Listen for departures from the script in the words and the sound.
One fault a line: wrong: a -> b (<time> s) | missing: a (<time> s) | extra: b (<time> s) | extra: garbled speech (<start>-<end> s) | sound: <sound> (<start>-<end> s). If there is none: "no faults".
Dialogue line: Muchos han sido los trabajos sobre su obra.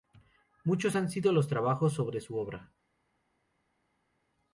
no faults